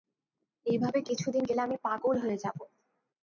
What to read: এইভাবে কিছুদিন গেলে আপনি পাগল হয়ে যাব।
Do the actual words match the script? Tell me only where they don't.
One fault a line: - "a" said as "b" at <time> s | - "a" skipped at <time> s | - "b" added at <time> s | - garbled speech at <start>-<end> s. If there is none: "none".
- "আপনি" said as "আমি" at 1.6 s